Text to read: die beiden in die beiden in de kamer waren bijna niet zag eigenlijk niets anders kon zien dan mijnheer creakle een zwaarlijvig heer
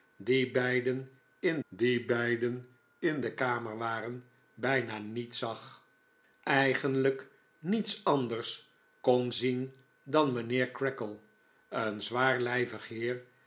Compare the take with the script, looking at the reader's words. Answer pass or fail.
pass